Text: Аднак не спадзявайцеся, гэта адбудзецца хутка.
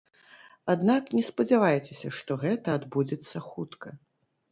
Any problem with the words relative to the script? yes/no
yes